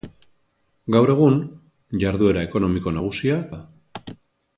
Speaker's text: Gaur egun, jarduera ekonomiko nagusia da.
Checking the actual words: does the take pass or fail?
pass